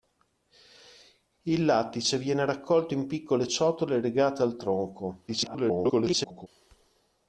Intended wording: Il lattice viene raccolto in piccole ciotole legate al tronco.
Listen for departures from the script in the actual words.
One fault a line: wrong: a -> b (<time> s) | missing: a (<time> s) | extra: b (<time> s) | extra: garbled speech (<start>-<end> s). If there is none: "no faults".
extra: garbled speech (5.3-6.5 s)